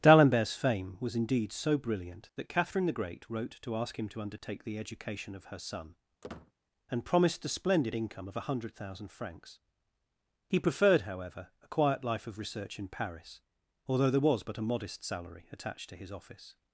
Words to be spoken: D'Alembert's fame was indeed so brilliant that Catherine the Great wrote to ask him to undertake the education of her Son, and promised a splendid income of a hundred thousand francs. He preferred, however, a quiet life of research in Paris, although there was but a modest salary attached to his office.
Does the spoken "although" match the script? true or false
true